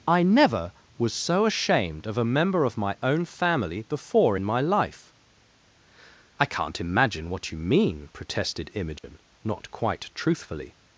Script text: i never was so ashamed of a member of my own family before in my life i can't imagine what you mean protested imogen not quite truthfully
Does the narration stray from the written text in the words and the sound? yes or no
yes